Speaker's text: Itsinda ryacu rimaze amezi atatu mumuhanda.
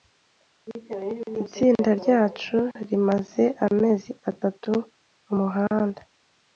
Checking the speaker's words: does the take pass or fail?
pass